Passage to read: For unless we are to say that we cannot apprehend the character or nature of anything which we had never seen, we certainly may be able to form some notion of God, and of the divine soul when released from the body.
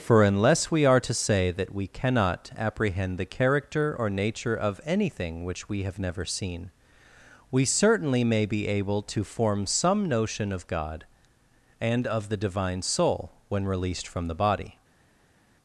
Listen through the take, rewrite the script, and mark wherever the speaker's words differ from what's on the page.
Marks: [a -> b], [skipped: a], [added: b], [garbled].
For unless we are to say that we cannot apprehend the character or nature of anything which we [had -> have] never seen, we certainly may be able to form some notion of God, and of the divine soul when released from the body.